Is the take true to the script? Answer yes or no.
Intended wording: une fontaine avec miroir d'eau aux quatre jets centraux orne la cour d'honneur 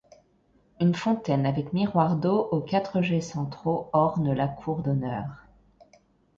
yes